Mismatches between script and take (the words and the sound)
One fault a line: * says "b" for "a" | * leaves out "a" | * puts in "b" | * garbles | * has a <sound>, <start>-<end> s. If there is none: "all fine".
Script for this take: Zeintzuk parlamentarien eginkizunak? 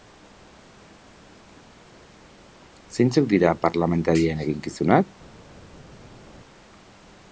* puts in "dira"